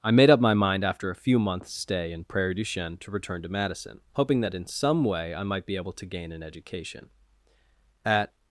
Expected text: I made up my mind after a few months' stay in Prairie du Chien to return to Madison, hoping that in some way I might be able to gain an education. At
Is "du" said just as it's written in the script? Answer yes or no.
yes